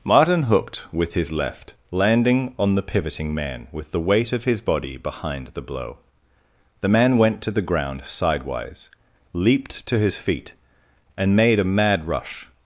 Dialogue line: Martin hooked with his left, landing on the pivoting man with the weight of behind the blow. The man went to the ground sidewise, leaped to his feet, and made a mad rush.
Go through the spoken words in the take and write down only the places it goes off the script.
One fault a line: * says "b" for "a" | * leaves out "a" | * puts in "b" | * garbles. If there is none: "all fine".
* puts in "his body"